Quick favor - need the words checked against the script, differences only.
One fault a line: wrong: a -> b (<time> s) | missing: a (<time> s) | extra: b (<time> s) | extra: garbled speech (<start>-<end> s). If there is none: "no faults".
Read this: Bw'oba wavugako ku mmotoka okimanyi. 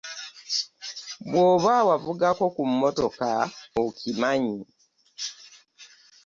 no faults